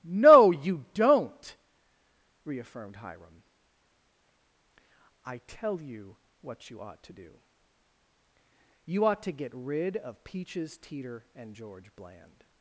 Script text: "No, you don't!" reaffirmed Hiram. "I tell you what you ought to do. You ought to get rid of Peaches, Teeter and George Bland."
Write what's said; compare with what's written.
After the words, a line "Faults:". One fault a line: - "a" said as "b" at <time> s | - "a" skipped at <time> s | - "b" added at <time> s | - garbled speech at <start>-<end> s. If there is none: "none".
"No, you don't!" reaffirmed Hiram. "I tell you what you ought to do. You ought to get rid of Peaches, Teeter and George Bland."
Faults:
none